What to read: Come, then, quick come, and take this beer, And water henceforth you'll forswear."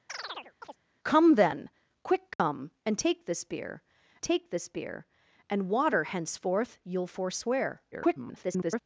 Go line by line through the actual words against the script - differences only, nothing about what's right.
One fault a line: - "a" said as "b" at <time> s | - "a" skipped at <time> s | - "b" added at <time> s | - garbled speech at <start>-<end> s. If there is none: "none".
- "take this beer" added at 4.2 s
- garbled speech at 7.9-8.8 s